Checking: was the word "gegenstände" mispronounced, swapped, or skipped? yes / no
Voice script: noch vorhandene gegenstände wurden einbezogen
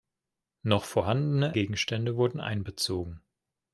no